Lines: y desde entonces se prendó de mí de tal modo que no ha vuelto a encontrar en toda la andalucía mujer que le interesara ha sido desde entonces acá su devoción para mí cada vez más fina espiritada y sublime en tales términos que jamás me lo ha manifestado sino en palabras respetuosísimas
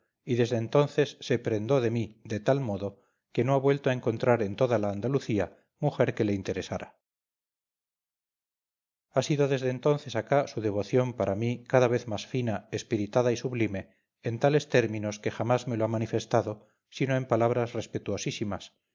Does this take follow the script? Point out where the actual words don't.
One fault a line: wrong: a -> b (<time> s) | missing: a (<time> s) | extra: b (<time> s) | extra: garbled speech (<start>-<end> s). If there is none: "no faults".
no faults